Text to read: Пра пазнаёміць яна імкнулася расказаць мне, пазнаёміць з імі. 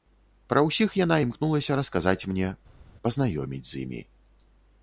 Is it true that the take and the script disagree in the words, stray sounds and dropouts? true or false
true